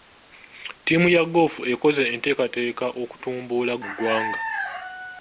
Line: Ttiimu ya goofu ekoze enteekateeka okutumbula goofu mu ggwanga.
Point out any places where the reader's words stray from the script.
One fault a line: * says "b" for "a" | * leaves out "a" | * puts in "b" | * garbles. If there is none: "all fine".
* leaves out "goofu"